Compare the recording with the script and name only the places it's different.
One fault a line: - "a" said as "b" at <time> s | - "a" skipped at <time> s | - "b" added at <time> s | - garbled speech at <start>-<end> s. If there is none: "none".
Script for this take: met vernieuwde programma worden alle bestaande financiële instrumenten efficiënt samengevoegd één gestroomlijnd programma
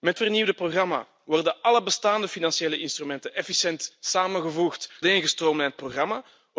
none